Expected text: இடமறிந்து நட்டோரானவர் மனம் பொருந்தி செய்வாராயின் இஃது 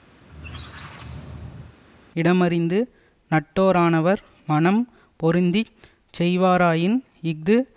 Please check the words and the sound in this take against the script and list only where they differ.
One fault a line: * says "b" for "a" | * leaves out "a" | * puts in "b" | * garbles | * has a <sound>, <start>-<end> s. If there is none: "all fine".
* has a squeak, 0.2-1.8 s